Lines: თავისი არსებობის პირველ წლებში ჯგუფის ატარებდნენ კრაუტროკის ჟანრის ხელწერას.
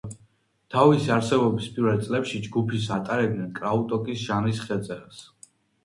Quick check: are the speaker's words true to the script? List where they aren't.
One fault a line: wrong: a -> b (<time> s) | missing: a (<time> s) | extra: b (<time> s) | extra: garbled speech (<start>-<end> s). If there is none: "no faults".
no faults